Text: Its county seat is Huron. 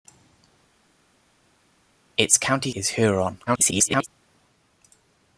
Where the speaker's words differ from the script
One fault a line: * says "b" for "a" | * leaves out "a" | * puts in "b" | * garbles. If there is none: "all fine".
* leaves out "seat"
* garbles